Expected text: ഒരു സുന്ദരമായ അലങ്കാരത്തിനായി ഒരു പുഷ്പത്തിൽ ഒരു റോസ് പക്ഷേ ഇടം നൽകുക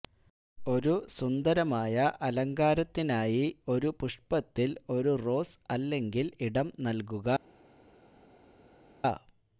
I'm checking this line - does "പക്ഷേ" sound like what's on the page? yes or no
no